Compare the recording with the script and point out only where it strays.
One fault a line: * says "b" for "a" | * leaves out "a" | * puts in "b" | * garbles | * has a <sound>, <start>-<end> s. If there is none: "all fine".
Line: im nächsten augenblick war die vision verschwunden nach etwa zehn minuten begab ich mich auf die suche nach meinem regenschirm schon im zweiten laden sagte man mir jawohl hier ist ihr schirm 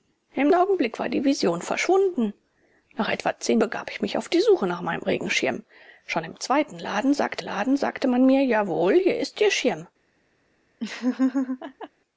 * leaves out "nächsten"
* leaves out "minuten"
* puts in "laden sagte"
* has a laugh, 10.8-11.9 s